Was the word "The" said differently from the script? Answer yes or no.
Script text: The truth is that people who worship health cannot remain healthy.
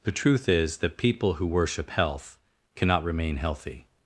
no